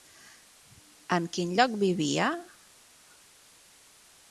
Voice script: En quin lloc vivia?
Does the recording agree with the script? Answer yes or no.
yes